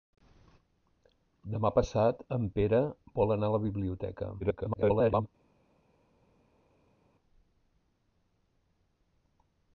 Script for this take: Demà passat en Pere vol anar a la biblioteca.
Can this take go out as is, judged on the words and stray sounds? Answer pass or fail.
fail